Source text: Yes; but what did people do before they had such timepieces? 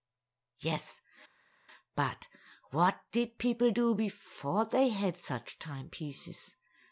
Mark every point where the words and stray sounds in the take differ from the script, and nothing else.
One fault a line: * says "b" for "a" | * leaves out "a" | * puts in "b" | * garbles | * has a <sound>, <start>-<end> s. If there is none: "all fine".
all fine